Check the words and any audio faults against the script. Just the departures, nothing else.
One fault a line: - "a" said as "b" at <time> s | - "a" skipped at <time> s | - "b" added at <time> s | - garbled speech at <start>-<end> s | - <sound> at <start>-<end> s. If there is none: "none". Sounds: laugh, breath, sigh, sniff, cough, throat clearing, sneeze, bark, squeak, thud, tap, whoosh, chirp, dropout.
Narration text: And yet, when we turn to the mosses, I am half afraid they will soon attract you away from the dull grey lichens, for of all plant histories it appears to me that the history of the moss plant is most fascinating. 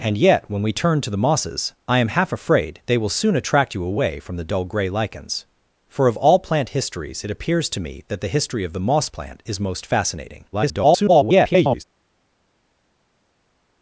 - garbled speech at 10.5-11.8 s